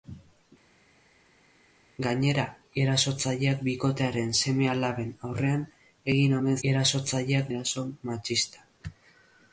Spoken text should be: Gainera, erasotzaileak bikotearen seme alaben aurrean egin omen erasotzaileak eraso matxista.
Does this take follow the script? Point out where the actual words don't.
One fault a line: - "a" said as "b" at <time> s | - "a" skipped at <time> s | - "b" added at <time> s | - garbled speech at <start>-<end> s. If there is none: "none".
none